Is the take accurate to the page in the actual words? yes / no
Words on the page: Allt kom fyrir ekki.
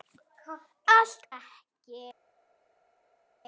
no